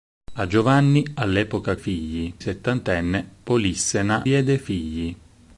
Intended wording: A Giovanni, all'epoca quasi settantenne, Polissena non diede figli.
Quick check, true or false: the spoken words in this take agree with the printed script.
false